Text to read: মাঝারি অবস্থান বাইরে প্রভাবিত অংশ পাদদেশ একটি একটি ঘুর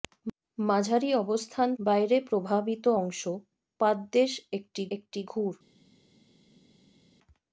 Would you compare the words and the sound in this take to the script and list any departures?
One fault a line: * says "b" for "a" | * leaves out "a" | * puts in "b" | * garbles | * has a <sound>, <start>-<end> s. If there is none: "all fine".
all fine